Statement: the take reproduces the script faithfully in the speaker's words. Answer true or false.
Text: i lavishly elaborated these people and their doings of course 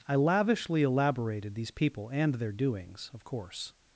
true